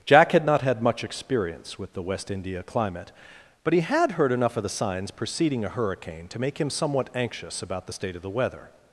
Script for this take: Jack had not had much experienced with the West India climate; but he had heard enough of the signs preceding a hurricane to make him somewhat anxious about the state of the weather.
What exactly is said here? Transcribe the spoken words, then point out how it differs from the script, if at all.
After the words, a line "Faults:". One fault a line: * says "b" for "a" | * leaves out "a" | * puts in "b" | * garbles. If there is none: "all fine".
Jack had not had much experience with the West India climate; but he had heard enough of the signs preceding a hurricane to make him somewhat anxious about the state of the weather.
Faults:
* says "experience" for "experienced"